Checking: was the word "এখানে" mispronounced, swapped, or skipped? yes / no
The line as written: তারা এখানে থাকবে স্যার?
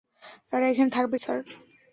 no